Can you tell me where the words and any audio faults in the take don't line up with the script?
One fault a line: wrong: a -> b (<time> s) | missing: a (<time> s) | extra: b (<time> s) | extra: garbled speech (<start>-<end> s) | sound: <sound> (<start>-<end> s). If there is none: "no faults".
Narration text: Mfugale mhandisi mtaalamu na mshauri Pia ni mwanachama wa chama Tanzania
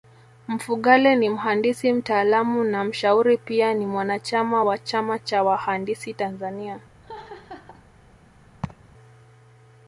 extra: ni (1.1 s)
extra: cha wahandisi (5.2 s)
sound: laugh (7.0-7.9 s)
sound: laugh (8.6-8.9 s)